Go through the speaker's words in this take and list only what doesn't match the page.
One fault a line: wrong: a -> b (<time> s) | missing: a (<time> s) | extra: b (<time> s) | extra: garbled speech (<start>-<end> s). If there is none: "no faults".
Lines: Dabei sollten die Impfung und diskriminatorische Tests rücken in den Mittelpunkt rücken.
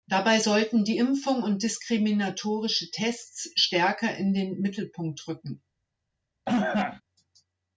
wrong: rücken -> stärker (3.6 s)